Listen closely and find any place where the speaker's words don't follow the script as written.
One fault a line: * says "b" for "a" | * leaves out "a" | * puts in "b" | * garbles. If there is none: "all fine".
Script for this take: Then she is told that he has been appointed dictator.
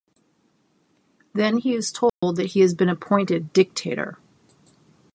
* says "he" for "she"